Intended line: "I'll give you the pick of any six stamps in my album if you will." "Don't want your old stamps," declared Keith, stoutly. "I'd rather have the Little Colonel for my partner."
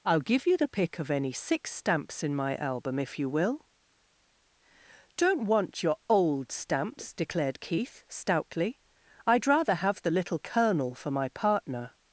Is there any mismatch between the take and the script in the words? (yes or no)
no